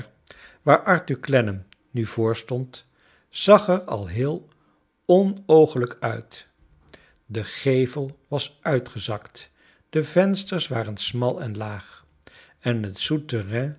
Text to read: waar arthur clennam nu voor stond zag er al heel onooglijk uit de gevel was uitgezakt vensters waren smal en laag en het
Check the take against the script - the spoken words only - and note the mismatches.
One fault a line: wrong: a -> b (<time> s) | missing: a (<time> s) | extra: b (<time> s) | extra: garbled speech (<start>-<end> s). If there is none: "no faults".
extra: de (9.9 s)